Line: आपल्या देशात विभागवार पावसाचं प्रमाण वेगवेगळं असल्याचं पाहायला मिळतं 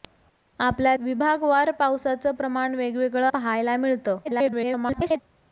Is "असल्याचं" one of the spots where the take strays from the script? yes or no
yes